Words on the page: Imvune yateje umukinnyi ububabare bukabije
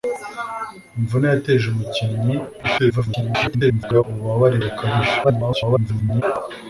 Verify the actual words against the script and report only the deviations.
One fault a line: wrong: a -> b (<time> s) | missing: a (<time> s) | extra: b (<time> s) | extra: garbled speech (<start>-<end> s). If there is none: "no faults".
extra: garbled speech (2.6-4.0 s)
extra: garbled speech (5.2-6.2 s)